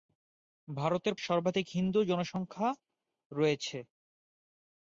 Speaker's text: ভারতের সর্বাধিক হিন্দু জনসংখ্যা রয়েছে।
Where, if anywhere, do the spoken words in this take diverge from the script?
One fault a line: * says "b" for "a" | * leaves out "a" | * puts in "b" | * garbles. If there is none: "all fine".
all fine